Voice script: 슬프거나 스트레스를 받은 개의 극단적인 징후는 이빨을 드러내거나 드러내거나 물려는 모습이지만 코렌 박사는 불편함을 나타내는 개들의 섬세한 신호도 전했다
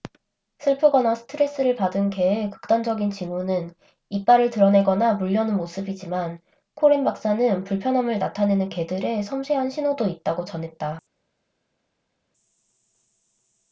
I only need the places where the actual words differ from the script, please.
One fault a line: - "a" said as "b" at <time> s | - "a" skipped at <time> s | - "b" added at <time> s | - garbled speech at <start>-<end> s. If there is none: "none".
- "드러내거나" skipped at 5.1 s
- "있다고" added at 10.1 s